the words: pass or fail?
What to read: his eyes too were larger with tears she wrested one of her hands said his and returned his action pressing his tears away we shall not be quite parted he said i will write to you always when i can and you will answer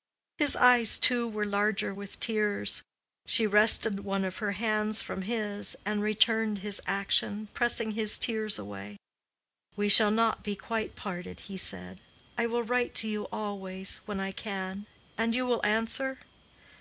fail